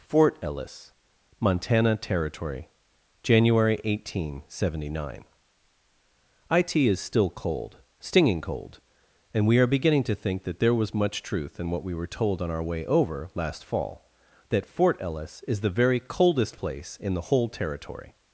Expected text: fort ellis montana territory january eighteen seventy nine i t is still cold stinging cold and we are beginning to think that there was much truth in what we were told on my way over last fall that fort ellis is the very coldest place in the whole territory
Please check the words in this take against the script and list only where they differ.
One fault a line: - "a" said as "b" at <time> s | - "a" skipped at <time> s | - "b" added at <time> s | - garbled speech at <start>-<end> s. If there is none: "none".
- "my" said as "our" at 12.5 s